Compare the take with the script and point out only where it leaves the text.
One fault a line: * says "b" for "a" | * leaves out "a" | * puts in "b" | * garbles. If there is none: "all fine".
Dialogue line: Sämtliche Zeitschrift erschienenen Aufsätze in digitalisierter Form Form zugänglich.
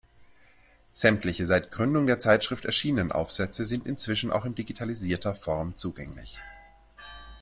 * puts in "seit Gründung der"
* puts in "sind inzwischen auch"
* leaves out "Form"